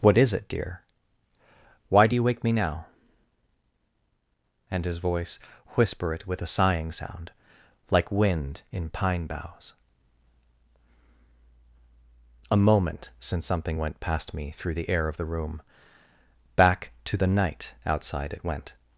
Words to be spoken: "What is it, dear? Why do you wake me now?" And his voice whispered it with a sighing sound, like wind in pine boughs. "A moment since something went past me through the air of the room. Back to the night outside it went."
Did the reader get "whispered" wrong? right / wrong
wrong